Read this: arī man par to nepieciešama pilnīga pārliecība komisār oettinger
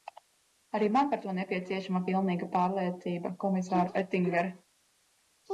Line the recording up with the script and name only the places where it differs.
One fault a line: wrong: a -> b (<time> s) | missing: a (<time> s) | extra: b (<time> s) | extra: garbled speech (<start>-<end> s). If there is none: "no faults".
no faults